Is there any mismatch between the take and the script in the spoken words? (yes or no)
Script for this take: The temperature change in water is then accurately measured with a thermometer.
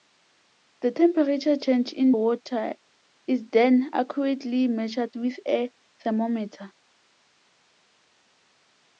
no